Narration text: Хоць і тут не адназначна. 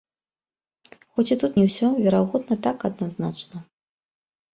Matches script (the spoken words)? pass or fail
fail